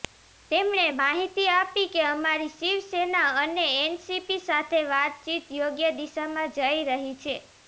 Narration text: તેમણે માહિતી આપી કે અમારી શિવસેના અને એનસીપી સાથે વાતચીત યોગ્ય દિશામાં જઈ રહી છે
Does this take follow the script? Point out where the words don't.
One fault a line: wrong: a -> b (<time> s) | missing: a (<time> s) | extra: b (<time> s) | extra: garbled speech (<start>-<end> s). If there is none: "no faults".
no faults